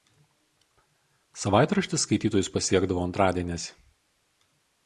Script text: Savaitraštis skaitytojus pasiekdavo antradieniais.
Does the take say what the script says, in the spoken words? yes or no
yes